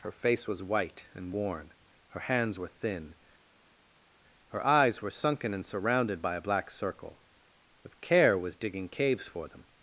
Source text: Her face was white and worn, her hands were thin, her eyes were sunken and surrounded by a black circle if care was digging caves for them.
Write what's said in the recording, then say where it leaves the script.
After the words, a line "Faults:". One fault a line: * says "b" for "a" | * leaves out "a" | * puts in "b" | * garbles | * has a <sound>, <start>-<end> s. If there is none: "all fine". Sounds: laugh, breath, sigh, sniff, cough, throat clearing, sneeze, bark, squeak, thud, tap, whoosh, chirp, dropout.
Her face was white and worn, her hands were thin, her eyes were sunken and surrounded by a black circle if care was digging caves for them.
Faults:
all fine